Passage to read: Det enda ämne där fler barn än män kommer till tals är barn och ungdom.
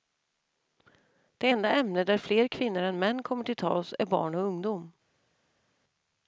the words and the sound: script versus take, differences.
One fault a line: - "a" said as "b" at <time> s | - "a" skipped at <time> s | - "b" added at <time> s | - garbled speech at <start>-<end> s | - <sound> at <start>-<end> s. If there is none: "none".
- "barn" said as "kvinnor" at 2.5 s